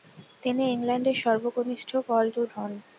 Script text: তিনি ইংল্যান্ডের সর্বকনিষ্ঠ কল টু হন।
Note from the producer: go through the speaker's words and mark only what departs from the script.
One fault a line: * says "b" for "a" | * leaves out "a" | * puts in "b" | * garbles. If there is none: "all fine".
all fine